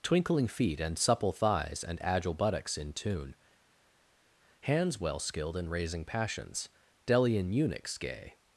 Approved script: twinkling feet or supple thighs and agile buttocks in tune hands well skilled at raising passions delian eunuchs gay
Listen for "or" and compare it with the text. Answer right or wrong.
wrong